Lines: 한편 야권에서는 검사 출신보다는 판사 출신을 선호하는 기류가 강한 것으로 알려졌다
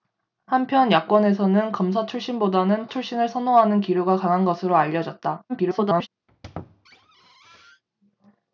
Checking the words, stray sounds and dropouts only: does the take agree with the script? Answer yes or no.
no